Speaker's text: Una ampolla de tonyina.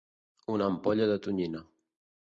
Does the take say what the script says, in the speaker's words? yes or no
yes